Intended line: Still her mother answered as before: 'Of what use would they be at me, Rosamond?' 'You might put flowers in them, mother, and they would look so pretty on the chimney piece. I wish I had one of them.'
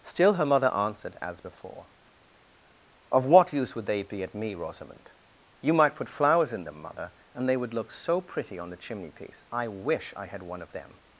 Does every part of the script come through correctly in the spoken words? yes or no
yes